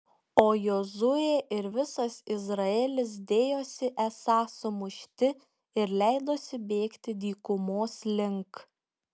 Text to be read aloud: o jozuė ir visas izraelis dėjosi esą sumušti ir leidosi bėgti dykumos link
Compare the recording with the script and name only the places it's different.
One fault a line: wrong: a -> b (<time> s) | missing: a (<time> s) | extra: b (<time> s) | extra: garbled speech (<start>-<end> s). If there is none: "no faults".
no faults